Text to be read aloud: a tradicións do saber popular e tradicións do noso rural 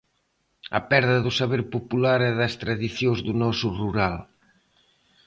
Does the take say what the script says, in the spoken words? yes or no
no